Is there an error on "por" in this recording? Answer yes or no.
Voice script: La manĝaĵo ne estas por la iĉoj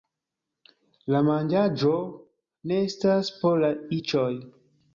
no